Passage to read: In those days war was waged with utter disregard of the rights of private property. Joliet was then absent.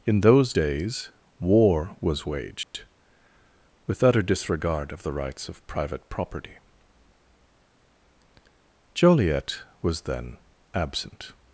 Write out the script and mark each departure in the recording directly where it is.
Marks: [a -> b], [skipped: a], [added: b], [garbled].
In those days war was waged with utter disregard of the rights of private property. Joliet was then absent.